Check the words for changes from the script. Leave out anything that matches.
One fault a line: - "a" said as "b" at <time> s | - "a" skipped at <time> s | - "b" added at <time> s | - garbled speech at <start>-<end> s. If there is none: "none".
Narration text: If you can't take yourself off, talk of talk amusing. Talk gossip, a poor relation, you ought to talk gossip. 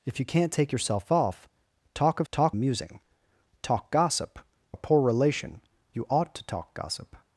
none